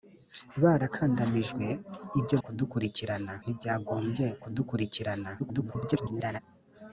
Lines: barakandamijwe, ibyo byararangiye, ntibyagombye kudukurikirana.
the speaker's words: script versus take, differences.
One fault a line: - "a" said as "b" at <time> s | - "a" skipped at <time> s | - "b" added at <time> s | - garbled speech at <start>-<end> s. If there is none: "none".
- "byararangiye" said as "kudukurikirana" at 2.4 s
- garbled speech at 5.4-6.4 s